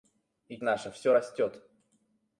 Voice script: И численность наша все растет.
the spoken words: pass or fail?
fail